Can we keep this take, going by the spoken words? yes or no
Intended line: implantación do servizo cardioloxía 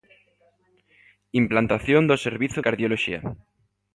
yes